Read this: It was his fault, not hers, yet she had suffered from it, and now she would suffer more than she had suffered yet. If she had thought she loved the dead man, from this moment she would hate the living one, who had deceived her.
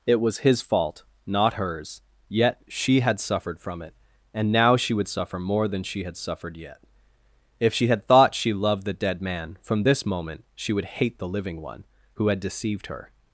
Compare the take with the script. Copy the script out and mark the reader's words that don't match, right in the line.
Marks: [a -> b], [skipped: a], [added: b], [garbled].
It was his fault, not hers, yet she had suffered from it, and now she would suffer more than she had suffered yet. If she had thought she loved the dead man, from this moment she would hate the living one, who had deceived her.